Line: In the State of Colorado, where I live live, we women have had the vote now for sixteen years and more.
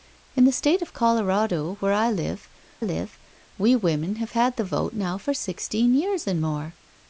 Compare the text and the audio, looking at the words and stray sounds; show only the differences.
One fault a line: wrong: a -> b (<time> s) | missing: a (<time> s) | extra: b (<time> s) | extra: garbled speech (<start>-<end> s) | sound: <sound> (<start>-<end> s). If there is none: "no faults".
no faults